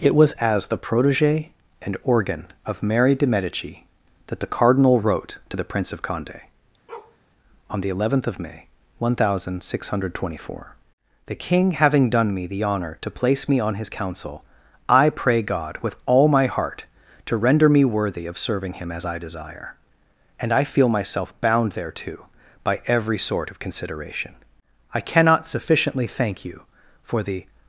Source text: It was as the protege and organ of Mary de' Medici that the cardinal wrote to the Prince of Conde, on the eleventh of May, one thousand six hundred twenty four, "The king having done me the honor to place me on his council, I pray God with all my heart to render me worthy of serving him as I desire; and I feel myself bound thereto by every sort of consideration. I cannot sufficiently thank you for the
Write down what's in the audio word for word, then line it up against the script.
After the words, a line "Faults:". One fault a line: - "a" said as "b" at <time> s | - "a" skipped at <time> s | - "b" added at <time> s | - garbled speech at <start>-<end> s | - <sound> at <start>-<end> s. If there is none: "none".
It was as the protege and organ of Mary de' Medici that the cardinal wrote to the Prince of Conde, on the eleventh of May, one thousand six hundred twenty four, "The king having done me the honor to place me on his council, I pray God with all my heart to render me worthy of serving him as I desire; and I feel myself bound thereto by every sort of consideration. I cannot sufficiently thank you for the
Faults:
- bark at 6.9-7.2 s